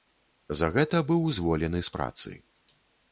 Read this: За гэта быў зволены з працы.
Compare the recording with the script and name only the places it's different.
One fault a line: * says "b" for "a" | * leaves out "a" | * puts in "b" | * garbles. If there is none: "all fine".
all fine